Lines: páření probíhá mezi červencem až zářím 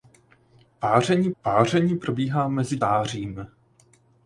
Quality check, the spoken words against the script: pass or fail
fail